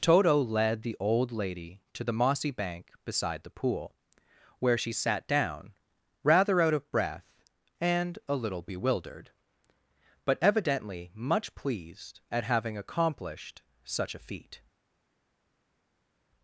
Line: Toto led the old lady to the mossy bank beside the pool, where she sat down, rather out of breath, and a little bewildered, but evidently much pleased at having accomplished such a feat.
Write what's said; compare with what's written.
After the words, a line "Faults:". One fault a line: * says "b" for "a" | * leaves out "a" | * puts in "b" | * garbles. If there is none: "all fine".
Toto led the old lady to the mossy bank beside the pool, where she sat down, rather out of breath, and a little bewildered, but evidently much pleased at having accomplished such a feat.
Faults:
all fine